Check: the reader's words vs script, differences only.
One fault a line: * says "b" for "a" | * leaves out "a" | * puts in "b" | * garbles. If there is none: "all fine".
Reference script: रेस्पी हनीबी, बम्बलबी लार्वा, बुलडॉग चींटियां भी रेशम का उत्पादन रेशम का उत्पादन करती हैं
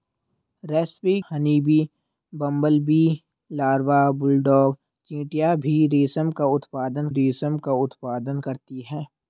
all fine